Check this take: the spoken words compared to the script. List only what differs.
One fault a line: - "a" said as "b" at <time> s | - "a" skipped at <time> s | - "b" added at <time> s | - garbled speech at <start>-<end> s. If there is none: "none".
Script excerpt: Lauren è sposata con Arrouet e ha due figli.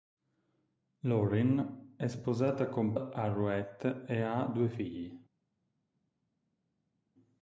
none